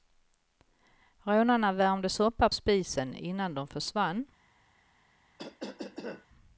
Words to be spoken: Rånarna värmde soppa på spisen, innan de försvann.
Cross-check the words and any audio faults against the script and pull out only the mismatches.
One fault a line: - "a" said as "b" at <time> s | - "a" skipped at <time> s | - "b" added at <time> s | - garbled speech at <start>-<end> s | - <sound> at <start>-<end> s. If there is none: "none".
- "på" skipped at 2.5 s
- cough at 5.4-6.3 s